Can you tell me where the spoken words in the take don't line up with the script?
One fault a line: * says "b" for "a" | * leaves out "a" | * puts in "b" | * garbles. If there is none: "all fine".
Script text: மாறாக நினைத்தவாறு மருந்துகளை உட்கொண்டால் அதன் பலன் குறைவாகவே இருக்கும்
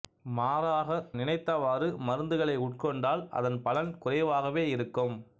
all fine